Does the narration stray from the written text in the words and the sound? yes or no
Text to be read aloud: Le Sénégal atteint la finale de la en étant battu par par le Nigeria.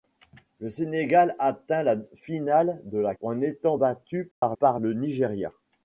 yes